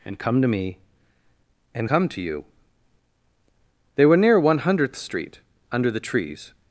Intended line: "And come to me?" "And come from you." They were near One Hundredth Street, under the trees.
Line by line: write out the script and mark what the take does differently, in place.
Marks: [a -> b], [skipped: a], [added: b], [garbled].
"And come to me?" "And come [from -> to] you." They were near One Hundredth Street, under the trees.